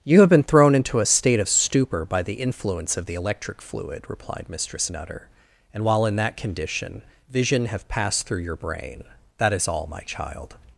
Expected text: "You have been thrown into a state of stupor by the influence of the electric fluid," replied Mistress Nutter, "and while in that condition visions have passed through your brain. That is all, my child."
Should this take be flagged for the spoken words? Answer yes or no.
yes